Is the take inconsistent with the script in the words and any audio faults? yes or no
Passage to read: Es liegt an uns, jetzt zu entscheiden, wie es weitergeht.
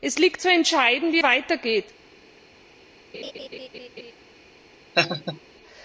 yes